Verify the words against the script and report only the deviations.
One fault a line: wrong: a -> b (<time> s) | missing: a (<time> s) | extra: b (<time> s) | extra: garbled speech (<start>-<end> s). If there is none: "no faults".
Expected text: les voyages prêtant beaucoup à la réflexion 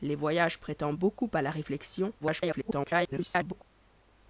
extra: garbled speech (2.2-3.6 s)